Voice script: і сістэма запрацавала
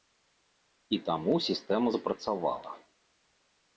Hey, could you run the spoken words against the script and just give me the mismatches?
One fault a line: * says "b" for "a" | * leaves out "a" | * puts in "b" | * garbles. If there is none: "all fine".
* puts in "таму"